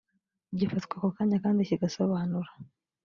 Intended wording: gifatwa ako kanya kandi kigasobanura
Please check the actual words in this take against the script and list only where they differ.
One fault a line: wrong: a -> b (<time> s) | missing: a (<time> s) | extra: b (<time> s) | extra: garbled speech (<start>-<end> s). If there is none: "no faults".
no faults